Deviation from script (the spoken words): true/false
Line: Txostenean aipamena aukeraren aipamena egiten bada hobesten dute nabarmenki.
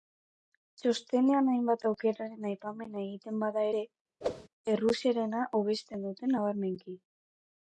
true